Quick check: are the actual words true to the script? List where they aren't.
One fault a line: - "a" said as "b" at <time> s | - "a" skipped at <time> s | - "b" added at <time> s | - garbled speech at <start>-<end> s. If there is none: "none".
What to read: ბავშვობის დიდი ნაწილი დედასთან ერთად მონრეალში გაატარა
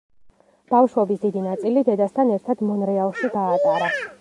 none